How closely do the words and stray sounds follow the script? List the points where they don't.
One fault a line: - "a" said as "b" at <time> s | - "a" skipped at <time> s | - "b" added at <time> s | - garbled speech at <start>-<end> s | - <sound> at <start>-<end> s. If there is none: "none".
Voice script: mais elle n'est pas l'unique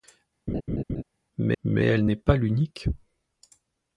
- laugh at 0.5-1.0 s
- "mais" added at 1.6 s